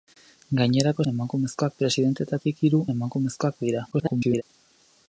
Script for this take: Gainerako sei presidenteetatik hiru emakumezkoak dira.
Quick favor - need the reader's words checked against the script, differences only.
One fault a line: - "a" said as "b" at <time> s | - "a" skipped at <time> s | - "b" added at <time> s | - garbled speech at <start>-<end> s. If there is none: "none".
- "sei" said as "emakumezkoak" at 1.1 s
- garbled speech at 3.9-4.4 s